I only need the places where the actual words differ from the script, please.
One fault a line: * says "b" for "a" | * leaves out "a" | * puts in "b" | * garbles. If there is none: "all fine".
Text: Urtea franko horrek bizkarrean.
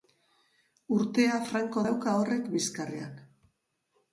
* puts in "dauka"